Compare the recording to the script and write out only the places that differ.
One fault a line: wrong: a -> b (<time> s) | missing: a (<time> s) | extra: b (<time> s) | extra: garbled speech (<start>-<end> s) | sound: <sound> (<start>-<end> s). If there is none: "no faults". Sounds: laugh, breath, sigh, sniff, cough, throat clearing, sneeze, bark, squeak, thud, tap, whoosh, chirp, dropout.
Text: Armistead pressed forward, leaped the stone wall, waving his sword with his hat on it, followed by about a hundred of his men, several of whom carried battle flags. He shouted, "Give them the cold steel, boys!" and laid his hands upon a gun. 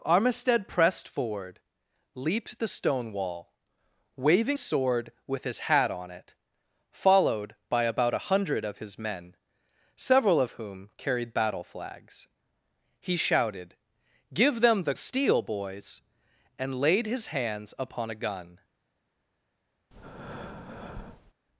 missing: his (4.6 s)
missing: cold (14.9 s)
sound: breath (19.9-21.3 s)